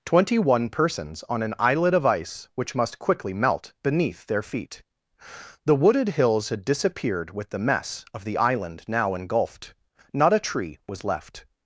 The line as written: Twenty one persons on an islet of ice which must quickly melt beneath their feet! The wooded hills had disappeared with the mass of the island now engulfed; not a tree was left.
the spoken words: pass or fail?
fail